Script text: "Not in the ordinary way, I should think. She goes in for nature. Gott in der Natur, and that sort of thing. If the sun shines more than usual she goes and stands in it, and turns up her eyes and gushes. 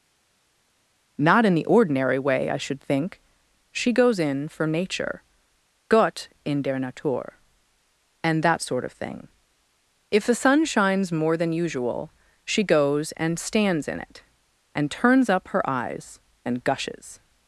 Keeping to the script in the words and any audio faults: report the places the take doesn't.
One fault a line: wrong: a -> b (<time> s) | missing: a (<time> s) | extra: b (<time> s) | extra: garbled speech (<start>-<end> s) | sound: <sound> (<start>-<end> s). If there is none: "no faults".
no faults